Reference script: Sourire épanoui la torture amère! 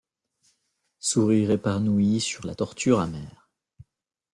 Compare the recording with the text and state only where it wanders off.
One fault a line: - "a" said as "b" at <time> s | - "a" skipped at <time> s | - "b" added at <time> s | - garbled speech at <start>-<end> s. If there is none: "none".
- "sur" added at 2.2 s